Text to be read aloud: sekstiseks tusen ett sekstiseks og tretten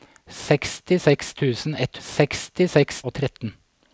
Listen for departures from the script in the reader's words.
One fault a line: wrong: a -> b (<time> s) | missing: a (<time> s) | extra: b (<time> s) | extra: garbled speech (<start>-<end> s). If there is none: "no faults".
no faults